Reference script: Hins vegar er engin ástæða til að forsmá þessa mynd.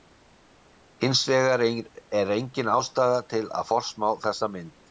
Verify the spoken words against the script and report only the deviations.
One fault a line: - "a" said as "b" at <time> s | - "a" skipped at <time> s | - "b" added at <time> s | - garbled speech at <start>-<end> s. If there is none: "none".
none